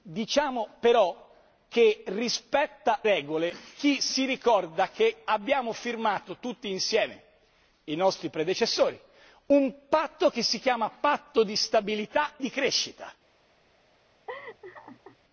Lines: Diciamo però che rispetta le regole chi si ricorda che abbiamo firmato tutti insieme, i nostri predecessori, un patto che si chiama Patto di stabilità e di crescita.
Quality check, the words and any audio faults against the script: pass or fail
fail